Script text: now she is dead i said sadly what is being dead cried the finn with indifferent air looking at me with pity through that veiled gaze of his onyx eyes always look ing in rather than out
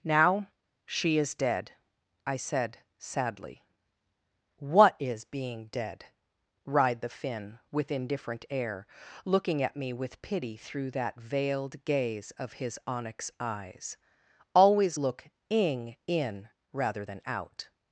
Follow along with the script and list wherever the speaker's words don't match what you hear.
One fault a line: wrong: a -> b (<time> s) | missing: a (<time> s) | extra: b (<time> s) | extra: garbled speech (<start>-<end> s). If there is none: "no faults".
wrong: cried -> writhed (6.7 s)